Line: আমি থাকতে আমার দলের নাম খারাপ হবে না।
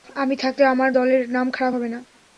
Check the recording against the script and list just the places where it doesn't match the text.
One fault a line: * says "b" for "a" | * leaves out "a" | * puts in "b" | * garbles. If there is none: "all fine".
all fine